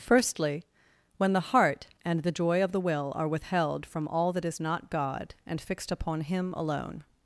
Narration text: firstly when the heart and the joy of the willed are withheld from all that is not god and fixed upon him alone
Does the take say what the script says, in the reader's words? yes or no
no